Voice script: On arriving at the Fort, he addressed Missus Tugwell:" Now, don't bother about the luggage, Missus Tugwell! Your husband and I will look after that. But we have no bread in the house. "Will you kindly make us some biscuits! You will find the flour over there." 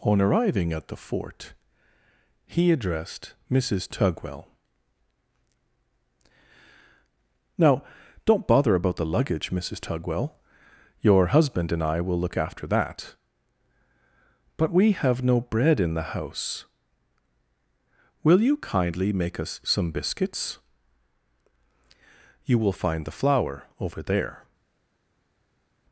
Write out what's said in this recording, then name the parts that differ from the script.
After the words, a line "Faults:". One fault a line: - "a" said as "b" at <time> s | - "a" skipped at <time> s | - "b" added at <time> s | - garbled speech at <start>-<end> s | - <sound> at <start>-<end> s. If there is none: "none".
On arriving at the Fort, he addressed Missus Tugwell:" Now, don't bother about the luggage, Missus Tugwell! Your husband and I will look after that. But we have no bread in the house. "Will you kindly make us some biscuits! You will find the flour over there."
Faults:
none